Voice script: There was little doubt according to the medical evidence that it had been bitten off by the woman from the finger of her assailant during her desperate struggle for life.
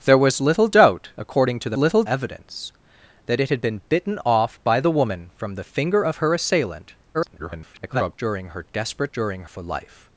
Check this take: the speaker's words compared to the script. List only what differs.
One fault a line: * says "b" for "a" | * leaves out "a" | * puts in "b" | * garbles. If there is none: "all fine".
* says "little" for "medical"
* garbles
* says "during" for "struggle"